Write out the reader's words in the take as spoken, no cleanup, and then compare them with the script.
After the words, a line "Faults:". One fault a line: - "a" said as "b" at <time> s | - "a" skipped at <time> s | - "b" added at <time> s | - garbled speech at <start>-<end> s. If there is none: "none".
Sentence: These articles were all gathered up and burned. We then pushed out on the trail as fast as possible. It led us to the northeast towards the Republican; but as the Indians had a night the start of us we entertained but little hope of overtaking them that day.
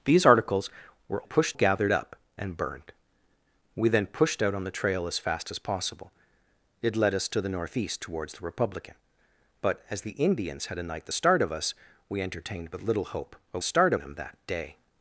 These articles were pushed gathered up and burned. We then pushed out on the trail as fast as possible. It led us to the northeast towards the Republican; but as the Indians had a night the start of us we entertained but little hope of start them that day.
Faults:
- "all" said as "pushed" at 1.2 s
- "overtaking" said as "start" at 13.6 s